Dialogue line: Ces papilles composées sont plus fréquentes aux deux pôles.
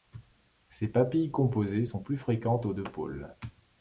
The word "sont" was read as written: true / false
true